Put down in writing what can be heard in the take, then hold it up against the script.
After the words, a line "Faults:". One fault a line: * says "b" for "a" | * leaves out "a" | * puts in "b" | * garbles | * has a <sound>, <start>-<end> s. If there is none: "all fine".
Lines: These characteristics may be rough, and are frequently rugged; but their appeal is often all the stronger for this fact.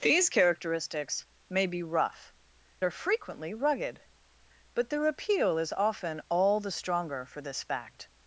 These characteristics may be rough, are frequently rugged; but their appeal is often all the stronger for this fact.
Faults:
* leaves out "and"